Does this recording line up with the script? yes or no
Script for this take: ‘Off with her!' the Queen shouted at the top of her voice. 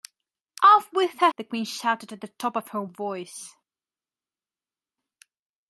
yes